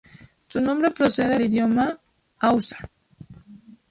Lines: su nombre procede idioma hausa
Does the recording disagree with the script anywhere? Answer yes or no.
no